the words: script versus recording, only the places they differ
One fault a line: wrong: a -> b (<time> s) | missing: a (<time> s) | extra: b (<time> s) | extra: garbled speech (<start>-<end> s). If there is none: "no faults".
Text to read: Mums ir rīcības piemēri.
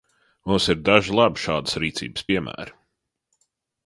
extra: daži labi šādas (0.9 s)